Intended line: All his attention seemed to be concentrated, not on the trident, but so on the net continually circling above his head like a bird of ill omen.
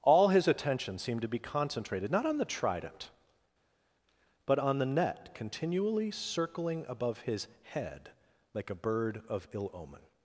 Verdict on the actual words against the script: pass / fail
fail